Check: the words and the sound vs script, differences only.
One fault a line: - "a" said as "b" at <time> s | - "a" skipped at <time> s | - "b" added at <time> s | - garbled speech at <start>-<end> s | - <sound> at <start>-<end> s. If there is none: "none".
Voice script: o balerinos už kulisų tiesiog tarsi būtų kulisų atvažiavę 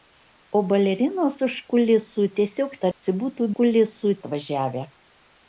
- dropout at 2.9-3.0 s